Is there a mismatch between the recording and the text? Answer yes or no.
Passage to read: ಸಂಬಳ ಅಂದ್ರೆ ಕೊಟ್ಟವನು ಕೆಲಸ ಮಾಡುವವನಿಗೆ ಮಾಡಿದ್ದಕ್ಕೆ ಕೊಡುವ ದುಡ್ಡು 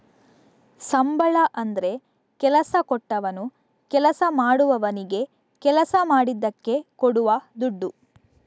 yes